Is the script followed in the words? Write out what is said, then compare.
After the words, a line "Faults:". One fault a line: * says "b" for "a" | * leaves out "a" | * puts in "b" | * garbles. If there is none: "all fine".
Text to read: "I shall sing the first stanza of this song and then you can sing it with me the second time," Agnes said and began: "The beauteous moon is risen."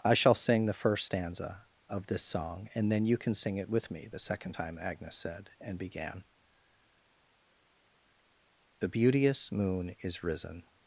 "I shall sing the first stanza of this song and then you can sing it with me the second time," Agnes said and began: "The beauteous moon is risen."
Faults:
all fine